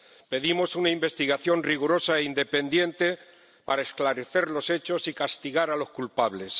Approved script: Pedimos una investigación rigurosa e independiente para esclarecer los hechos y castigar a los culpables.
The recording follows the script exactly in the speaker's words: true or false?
true